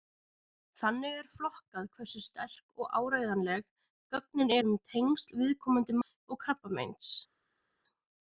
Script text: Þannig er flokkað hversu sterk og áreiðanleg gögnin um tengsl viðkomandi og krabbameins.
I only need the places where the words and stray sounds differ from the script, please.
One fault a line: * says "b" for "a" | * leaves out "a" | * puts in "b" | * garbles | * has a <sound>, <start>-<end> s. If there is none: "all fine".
all fine